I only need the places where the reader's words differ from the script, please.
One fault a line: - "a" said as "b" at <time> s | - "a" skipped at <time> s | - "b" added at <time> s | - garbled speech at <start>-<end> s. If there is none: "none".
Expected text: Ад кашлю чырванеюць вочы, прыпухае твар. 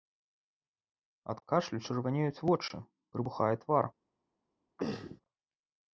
none